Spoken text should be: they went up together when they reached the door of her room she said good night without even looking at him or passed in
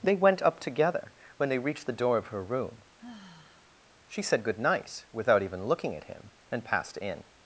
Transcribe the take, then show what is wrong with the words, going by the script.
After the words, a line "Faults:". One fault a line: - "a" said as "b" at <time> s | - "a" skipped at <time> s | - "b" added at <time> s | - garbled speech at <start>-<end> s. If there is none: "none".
they went up together when they reached the door of her room she said good night without even looking at him and passed in
Faults:
- "or" said as "and" at 6.5 s